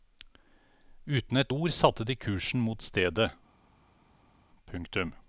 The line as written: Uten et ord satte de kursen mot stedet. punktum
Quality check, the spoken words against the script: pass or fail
pass